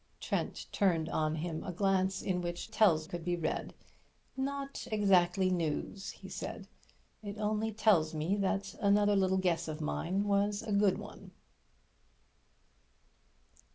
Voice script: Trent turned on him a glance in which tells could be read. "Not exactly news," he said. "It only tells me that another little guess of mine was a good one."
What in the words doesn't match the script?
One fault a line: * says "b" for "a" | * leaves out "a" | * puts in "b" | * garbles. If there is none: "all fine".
all fine